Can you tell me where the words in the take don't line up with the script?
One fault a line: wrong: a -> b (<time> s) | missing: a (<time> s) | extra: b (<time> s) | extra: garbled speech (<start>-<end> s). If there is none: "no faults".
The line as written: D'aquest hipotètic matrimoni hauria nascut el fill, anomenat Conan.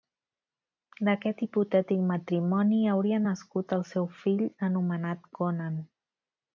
extra: seu (3.9 s)